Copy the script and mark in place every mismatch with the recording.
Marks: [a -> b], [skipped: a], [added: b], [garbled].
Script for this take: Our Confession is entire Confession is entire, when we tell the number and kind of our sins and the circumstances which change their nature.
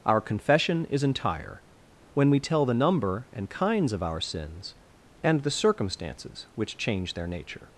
Our Confession is entire [skipped: Confession is entire,] when we tell the number and [kind -> kinds] of our sins and the circumstances which change their nature.